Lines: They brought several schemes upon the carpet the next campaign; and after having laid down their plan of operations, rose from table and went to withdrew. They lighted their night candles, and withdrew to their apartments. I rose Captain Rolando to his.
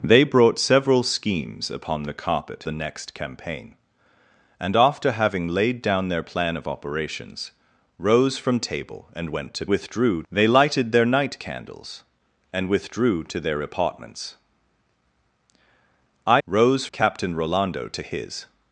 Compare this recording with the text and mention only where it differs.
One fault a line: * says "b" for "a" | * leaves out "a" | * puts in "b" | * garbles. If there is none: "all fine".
all fine